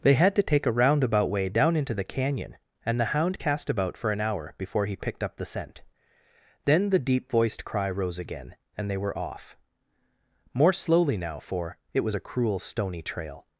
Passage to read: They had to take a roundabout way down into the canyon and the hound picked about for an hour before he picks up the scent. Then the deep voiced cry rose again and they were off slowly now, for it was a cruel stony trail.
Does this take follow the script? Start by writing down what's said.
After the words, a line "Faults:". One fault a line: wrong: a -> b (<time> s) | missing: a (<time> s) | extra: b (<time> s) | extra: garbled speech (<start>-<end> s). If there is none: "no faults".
They had to take a roundabout way down into the canyon and the hound cast about for an hour before he picked up the scent. Then the deep voiced cry rose again and they were off more slowly now, for it was a cruel stony trail.
Faults:
wrong: picked -> cast (3.4 s)
wrong: picks -> picked (4.9 s)
extra: more (10.5 s)